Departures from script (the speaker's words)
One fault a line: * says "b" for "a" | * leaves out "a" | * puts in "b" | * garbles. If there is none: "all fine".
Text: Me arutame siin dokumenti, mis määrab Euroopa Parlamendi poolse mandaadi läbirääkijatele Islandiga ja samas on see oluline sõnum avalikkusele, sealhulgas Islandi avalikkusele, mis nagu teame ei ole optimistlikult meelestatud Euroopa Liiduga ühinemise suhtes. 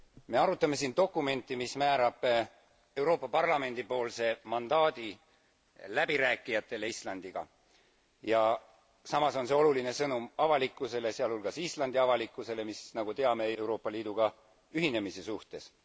* leaves out "ole optimistlikult meelestatud"